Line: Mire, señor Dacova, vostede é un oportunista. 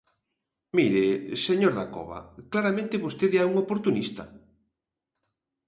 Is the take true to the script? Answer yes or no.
no